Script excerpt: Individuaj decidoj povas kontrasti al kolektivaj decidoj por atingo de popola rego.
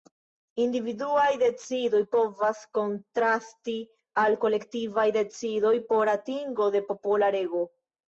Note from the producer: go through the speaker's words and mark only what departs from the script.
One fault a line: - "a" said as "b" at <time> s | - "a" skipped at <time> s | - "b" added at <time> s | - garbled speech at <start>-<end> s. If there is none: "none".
none